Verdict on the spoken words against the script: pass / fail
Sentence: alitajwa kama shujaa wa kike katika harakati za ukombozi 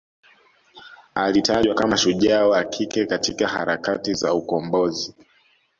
pass